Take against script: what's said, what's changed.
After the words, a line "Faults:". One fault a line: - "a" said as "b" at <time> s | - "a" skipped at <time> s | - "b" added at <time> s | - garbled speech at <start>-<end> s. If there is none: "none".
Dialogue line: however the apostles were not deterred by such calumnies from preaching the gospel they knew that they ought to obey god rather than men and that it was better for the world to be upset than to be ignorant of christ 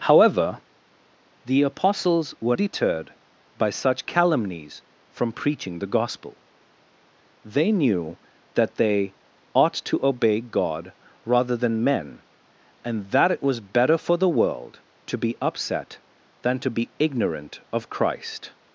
however the apostles were deterred by such calumnies from preaching the gospel they knew that they ought to obey god rather than men and that it was better for the world to be upset than to be ignorant of christ
Faults:
- "not" skipped at 2.6 s